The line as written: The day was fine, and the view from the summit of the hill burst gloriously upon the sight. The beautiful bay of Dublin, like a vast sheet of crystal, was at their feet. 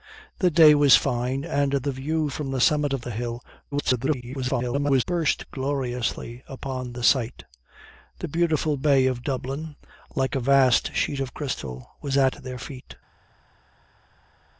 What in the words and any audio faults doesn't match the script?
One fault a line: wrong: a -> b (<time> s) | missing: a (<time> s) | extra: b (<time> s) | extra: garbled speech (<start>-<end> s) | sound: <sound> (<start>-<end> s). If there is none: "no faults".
extra: garbled speech (3.7-5.0 s)